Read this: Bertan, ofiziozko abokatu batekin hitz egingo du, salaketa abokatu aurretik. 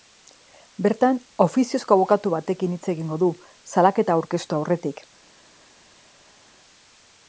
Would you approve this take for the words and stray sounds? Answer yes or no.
no